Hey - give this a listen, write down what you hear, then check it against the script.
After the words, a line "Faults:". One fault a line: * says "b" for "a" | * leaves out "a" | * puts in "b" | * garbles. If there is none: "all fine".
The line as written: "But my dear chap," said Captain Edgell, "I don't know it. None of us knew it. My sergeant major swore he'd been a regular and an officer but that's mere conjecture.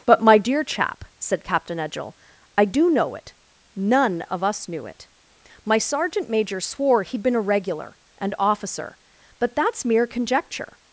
"But my dear chap," said Captain Edgell, "I do know it. None of us knew it. My sergeant major swore he'd been a regular and officer but that's mere conjecture.
Faults:
* says "do" for "don't"
* leaves out "an"